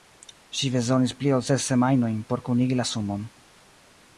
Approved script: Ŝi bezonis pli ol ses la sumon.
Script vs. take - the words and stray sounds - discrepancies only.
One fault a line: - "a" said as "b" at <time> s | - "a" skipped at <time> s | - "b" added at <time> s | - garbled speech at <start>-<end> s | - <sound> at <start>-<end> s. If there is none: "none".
- "semajnojn por kunigi" added at 1.7 s